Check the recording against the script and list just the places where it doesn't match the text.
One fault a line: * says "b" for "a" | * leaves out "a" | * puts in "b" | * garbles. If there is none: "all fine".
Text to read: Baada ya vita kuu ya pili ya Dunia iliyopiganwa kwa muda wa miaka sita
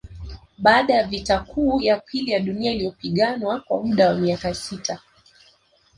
all fine